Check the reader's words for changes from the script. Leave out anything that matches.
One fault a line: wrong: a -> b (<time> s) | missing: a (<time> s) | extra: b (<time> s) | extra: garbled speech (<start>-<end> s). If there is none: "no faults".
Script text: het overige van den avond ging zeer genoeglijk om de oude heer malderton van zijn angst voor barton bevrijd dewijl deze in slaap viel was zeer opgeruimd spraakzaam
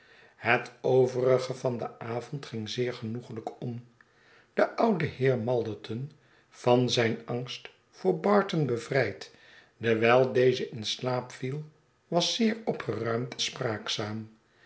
no faults